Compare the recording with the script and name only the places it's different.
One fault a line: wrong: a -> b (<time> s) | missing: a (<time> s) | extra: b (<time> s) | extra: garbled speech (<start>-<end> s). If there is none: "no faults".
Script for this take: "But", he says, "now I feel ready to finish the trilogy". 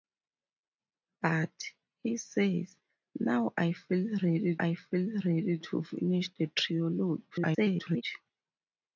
extra: I feel ready (4.6 s)
extra: garbled speech (7.3-8.0 s)